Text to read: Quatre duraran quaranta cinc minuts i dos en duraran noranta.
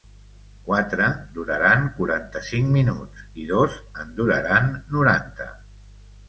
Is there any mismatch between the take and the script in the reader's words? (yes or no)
no